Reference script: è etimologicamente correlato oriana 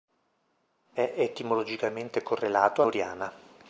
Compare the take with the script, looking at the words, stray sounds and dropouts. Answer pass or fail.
pass